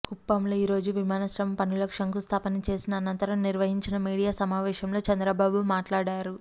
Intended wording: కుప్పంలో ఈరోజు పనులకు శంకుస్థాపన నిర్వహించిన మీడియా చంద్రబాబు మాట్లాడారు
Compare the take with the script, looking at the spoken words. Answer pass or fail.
fail